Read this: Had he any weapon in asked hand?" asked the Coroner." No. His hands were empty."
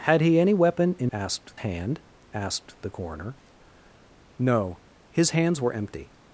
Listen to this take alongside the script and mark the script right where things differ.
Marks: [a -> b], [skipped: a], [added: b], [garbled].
Had he any weapon in asked hand?" asked the Coroner." No. His hands were empty."